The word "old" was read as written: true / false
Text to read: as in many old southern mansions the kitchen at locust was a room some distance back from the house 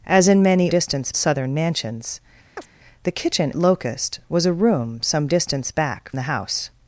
false